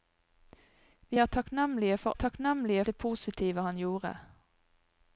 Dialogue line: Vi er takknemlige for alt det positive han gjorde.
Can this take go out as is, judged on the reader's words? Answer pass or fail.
fail